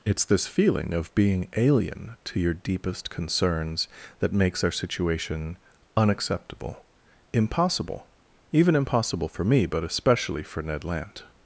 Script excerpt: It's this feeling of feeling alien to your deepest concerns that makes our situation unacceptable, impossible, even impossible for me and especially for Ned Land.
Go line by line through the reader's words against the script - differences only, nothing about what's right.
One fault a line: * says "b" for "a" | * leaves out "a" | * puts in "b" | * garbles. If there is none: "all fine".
* says "being" for "feeling"
* says "but" for "and"